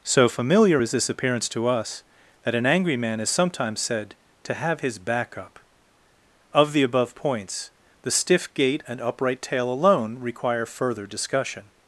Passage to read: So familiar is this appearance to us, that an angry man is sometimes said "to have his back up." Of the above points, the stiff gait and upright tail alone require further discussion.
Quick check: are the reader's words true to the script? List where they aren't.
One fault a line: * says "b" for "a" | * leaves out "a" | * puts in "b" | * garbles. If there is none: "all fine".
all fine